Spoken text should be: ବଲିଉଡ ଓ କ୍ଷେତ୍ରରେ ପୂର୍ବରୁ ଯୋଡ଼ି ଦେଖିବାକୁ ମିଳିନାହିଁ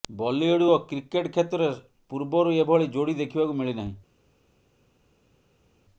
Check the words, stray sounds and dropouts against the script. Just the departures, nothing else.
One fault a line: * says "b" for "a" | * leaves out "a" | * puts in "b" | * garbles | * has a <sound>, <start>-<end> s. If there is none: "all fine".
* puts in "କ୍ରିକେଟ"
* puts in "ଏଭଳି"